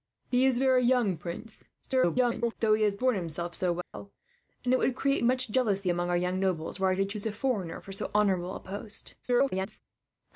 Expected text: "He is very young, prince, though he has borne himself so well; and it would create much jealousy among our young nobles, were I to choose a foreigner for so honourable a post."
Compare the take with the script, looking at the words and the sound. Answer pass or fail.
fail